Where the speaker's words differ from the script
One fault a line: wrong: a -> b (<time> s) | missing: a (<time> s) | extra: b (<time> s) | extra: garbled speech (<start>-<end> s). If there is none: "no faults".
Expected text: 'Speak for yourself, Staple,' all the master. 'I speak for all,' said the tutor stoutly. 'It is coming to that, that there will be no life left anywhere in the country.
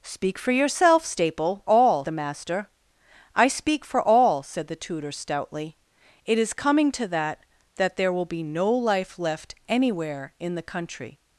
no faults